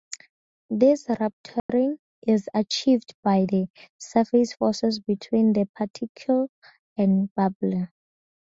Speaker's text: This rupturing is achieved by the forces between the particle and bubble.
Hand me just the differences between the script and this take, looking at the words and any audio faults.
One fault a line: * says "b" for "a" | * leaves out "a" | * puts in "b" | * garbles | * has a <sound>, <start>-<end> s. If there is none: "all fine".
* has a dropout, 1.6-1.7 s
* puts in "surface"